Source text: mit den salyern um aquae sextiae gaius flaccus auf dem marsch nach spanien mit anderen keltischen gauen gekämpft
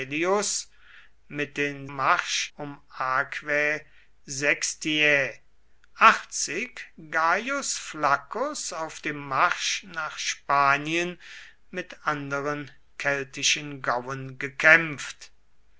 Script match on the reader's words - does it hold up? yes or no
no